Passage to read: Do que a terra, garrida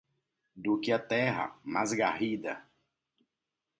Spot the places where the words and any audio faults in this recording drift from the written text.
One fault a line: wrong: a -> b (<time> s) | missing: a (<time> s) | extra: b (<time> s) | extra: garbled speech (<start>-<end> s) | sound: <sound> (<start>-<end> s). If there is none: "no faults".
extra: mais (1.6 s)